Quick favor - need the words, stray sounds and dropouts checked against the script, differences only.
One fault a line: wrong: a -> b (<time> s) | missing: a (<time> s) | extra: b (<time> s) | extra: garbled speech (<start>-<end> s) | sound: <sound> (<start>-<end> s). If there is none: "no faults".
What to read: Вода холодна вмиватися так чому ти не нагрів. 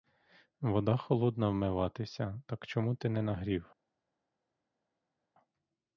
no faults